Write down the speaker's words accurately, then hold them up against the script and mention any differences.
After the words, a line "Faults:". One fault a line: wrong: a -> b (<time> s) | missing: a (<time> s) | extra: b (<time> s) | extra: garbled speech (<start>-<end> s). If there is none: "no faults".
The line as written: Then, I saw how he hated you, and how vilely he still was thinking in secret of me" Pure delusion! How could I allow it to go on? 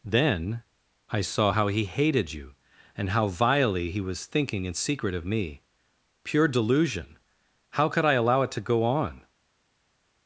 Then, I saw how he hated you, and how vilely he was thinking in secret of me" Pure delusion! How could I allow it to go on?
Faults:
missing: still (4.0 s)